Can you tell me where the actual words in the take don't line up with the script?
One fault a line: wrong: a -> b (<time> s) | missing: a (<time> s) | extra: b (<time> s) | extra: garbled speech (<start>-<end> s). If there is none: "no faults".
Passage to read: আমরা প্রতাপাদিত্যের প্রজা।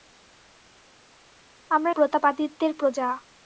no faults